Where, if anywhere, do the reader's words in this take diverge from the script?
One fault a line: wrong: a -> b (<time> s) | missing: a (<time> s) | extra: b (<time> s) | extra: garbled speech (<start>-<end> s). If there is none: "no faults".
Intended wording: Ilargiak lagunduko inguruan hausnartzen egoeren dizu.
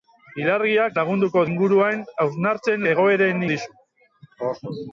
no faults